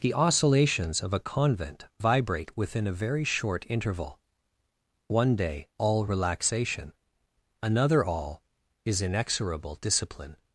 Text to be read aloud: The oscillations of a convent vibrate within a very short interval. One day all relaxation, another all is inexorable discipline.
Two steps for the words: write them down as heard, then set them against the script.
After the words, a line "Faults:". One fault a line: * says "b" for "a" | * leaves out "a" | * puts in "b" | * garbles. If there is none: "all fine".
The oscillations of a convent vibrate within a very short interval. One day all relaxation, another all is inexorable discipline.
Faults:
all fine